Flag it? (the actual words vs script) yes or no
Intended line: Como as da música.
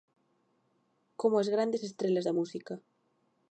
yes